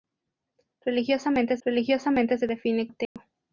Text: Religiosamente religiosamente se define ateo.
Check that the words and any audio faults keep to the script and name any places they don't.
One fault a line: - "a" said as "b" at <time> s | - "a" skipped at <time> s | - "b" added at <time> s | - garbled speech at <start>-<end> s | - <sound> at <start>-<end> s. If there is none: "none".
- dropout at 3.1-3.2 s